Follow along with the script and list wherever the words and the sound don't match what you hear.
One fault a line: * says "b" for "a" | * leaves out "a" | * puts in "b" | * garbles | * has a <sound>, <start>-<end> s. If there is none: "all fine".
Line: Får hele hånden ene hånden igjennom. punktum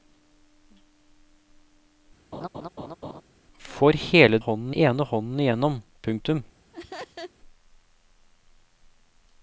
* has a laugh, 2.3-3.2 s
* has a laugh, 6.7-7.3 s